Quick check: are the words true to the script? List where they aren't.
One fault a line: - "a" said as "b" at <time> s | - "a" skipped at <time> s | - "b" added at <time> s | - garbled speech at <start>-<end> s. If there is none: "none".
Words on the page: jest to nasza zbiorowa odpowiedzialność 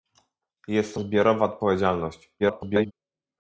- "nasza" skipped at 1.0 s
- garbled speech at 2.4-2.9 s